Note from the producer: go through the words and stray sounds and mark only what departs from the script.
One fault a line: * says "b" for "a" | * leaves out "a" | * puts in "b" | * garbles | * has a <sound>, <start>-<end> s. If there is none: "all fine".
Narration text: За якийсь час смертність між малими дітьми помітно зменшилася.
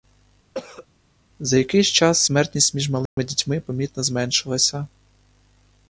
* has a cough, 0.5-0.9 s
* has a dropout, 3.1-3.2 s